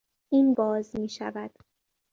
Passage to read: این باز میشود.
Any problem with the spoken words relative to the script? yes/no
no